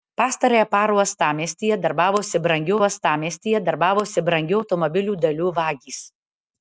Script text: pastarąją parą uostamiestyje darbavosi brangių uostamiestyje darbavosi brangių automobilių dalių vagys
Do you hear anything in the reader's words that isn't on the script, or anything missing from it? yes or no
no